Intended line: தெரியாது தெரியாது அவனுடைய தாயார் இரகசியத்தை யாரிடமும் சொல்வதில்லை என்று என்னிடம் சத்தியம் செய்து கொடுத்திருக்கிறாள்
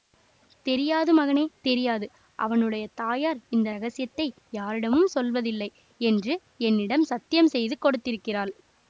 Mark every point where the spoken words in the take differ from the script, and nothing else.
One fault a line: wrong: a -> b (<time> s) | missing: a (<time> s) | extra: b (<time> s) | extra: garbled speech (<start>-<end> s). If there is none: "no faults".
extra: மகனே (1.1 s)
extra: இந்த (3.5 s)